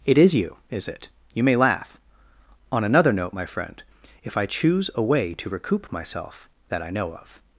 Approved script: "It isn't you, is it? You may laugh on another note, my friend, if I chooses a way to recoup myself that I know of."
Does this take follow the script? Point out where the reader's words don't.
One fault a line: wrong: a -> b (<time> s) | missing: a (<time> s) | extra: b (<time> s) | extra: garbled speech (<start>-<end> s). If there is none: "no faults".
wrong: isn't -> is (0.2 s)
wrong: chooses -> choose (4.5 s)